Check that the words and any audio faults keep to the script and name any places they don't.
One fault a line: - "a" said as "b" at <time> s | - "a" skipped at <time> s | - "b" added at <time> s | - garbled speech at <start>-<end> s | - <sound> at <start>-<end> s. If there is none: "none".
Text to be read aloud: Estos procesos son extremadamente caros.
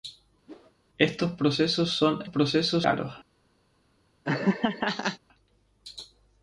- whoosh at 0.5-0.7 s
- "extremadamente" said as "procesos" at 2.3 s
- laugh at 4.2-5.2 s